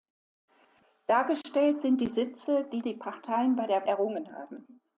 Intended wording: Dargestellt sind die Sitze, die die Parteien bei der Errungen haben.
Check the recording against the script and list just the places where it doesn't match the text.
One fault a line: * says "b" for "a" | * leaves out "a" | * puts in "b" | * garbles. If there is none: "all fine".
all fine